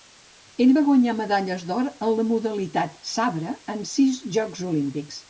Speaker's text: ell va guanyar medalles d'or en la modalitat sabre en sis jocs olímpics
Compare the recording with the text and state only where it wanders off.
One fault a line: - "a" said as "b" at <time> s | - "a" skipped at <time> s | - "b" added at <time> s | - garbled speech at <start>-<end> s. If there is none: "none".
none